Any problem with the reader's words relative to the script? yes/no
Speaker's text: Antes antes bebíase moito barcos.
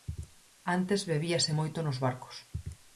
yes